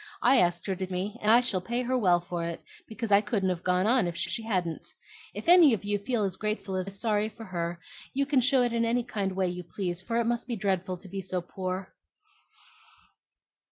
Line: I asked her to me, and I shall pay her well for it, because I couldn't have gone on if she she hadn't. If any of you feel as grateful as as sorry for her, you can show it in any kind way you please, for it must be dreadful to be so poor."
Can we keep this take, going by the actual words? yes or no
yes